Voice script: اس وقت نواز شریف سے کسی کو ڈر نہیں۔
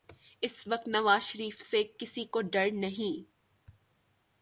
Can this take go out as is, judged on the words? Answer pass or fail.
pass